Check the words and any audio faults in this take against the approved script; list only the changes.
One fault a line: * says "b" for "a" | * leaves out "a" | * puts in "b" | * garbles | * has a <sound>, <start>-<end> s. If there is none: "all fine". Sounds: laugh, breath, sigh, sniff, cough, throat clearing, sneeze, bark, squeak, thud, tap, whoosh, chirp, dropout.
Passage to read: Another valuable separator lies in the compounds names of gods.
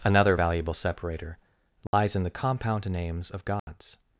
* has a dropout, 1.9-1.9 s
* says "compound" for "compounds"
* has a dropout, 3.6-3.7 s